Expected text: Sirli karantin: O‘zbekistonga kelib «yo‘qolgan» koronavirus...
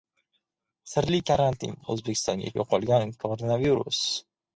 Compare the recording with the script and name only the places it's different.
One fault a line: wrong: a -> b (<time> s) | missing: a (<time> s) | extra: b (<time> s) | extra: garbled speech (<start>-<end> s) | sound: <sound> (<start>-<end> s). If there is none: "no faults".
missing: kelib (2.5 s)